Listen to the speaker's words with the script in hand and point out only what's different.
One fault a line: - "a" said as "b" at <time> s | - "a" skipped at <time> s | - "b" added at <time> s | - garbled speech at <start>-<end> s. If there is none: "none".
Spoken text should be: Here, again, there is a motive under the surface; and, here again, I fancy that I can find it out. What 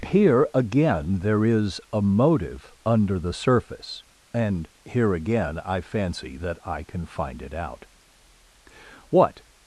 none